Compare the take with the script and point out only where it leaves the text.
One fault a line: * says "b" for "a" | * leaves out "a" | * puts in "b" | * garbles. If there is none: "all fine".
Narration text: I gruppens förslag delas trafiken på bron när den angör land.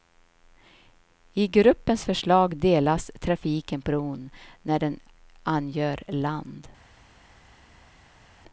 * leaves out "på"